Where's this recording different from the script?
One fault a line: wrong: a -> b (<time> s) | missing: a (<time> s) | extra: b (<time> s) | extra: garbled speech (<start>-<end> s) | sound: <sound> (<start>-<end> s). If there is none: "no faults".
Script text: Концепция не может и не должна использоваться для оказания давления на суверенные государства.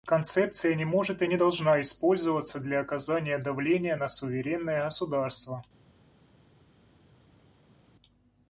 no faults